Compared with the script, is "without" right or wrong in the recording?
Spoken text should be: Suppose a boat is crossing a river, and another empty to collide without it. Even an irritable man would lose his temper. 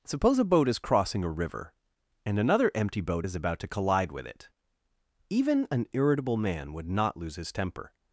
wrong